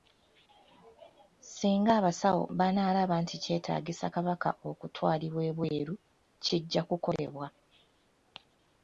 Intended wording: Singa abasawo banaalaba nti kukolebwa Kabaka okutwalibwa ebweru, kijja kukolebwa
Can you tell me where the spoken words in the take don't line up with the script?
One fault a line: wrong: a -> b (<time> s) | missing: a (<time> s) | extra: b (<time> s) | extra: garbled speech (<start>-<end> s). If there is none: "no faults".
wrong: kukolebwa -> kyetaagisa (3.4 s)